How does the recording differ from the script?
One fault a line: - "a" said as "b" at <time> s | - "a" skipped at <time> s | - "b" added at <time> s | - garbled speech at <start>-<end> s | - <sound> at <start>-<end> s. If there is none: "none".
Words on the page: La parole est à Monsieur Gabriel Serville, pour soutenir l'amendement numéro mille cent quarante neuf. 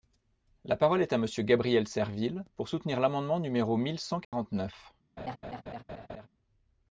- dropout at 4.2-4.3 s
- laugh at 5.2-6.3 s